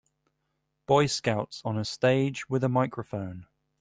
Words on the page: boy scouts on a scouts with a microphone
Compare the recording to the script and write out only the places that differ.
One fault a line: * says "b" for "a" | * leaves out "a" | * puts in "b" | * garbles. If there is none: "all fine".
* says "stage" for "scouts"